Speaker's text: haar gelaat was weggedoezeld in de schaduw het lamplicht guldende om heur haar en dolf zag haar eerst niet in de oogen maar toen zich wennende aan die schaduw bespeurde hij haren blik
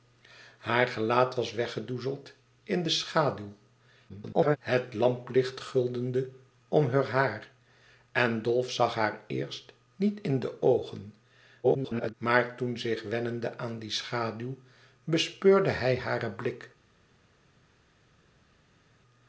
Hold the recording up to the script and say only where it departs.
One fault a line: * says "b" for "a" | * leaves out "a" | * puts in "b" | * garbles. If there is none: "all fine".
* garbles
* garbles